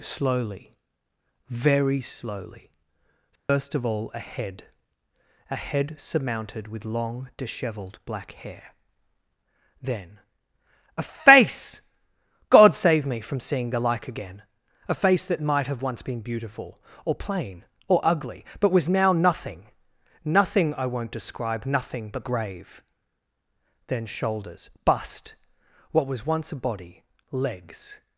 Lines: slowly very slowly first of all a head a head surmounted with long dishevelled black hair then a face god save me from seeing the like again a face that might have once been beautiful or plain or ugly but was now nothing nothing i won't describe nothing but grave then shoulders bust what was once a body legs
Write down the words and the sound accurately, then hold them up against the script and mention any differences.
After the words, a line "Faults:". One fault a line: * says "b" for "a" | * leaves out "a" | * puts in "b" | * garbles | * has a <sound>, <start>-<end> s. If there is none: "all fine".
slowly very slowly first of all a head a head surmounted with long dishevelled black hair then a face god save me from seeing the like again a face that might have once been beautiful or plain or ugly but was now nothing nothing i won't describe nothing but grave then shoulders bust what was once a body legs
Faults:
* has a dropout, 3.4-3.5 s